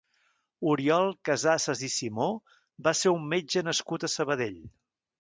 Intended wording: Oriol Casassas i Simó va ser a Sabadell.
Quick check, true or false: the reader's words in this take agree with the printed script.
false